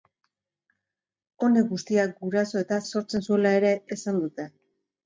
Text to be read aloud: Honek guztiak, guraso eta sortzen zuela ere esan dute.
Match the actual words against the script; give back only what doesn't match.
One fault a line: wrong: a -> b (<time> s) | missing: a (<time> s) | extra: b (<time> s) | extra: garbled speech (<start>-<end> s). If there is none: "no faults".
no faults